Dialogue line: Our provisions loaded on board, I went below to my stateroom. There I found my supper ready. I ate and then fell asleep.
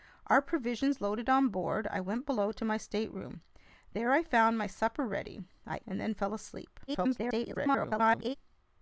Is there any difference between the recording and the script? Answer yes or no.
yes